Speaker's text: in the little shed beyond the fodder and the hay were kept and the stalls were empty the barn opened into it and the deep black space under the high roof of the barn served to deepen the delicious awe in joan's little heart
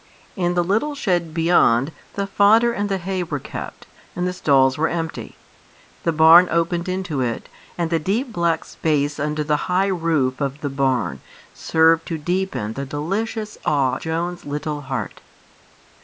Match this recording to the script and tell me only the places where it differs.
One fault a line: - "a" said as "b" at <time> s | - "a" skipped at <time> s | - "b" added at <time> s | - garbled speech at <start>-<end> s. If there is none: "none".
- "in" skipped at 14.0 s